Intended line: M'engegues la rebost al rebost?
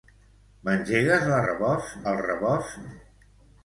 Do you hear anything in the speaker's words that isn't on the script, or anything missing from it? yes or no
no